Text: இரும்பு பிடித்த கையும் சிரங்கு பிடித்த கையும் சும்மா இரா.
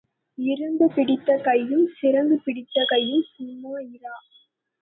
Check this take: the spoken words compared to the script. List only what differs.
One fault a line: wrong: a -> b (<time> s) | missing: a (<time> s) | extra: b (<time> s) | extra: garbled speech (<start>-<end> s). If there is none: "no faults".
no faults